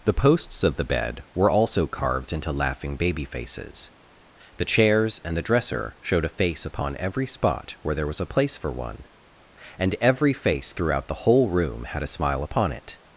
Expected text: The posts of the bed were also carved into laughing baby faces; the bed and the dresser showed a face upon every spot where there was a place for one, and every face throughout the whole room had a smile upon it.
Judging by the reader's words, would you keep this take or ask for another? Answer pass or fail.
fail